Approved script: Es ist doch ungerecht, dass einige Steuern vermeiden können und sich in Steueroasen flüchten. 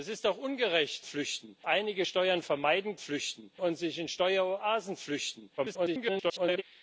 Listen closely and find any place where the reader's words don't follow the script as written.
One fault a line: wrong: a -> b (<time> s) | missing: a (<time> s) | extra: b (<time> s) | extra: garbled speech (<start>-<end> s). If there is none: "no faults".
wrong: dass -> flüchten (1.0 s)
wrong: können -> flüchten (3.0 s)
extra: garbled speech (5.6-6.6 s)